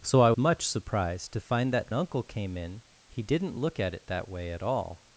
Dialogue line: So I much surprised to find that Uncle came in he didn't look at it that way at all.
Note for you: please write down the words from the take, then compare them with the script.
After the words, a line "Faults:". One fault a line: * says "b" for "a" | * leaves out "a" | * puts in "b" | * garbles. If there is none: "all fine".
So I much surprised to find that Uncle came in he didn't look at it that way at all.
Faults:
all fine